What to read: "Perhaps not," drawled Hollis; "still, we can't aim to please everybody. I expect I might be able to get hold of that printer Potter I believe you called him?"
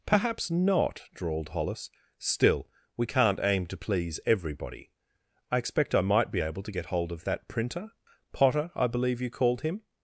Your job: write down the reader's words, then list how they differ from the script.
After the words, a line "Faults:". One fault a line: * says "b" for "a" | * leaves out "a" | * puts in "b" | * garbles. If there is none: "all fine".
"Perhaps not," drawled Hollis; "still, we can't aim to please everybody. I expect I might be able to get hold of that printer Potter I believe you called him?"
Faults:
all fine